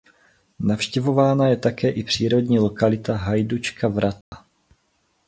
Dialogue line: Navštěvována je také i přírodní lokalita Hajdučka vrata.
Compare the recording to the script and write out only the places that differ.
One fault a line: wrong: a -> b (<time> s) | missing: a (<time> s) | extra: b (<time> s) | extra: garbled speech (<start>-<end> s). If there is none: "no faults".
no faults